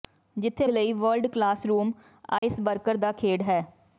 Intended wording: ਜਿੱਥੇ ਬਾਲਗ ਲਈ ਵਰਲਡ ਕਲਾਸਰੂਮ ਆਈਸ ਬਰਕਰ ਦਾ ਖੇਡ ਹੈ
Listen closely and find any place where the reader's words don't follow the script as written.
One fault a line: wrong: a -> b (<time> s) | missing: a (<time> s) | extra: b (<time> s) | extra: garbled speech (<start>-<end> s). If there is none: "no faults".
missing: ਬਾਲਗ (0.7 s)